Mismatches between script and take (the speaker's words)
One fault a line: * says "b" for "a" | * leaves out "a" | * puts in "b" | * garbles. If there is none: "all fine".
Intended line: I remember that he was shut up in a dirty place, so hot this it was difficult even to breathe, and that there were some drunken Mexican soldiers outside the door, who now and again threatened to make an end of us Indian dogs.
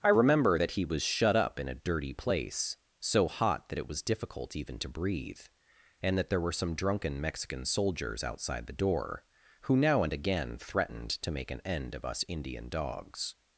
* says "that" for "this"